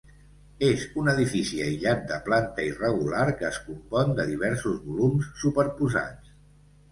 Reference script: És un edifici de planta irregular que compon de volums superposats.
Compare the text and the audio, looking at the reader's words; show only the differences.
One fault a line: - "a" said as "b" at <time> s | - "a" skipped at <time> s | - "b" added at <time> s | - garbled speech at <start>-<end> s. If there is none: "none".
- "aïllat" added at 1.6 s
- "es" added at 3.5 s
- "diversos" added at 4.3 s